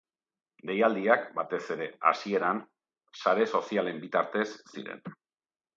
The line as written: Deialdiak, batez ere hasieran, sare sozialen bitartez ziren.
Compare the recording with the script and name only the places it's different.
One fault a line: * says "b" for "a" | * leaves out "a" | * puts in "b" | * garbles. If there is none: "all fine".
all fine